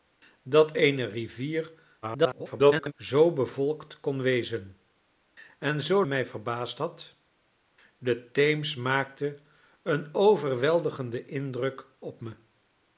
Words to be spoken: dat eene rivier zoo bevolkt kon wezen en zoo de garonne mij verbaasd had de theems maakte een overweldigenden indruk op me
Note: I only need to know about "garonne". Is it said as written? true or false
false